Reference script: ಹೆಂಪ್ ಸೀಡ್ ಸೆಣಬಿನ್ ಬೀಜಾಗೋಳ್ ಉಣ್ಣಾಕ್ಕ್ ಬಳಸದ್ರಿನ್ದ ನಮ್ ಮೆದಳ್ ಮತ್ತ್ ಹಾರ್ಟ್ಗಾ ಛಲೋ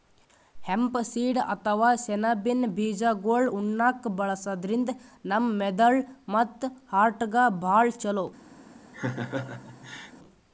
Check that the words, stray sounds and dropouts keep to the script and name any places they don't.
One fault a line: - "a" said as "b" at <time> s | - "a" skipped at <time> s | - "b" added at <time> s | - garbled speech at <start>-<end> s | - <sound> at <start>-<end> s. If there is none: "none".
- "ಅಥವಾ" added at 1.5 s
- "ಭಾಳ್" added at 7.6 s
- laugh at 8.9-10.1 s